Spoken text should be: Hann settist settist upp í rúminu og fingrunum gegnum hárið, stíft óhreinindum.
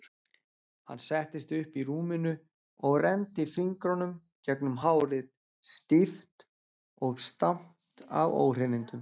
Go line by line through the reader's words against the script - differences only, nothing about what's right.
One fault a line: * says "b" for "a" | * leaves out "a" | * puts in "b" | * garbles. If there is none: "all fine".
* leaves out "settist"
* puts in "renndi"
* puts in "og stamt af"